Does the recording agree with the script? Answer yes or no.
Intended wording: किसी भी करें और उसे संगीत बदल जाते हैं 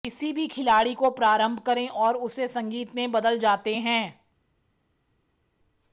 no